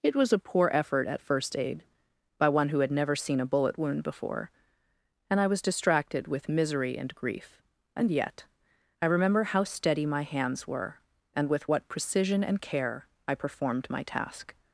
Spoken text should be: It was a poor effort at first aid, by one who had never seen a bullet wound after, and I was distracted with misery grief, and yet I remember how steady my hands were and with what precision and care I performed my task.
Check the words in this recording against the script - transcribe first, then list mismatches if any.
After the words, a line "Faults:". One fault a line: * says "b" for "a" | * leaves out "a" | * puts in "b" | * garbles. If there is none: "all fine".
It was a poor effort at first aid, by one who had never seen a bullet wound before, and I was distracted with misery and grief, and yet I remember how steady my hands were and with what precision and care I performed my task.
Faults:
* says "before" for "after"
* puts in "and"